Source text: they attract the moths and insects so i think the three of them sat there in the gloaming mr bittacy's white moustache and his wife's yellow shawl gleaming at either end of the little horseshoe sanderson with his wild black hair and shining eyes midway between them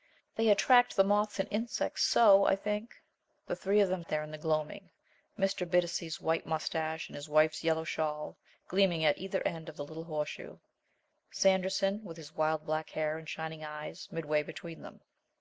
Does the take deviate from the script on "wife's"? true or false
false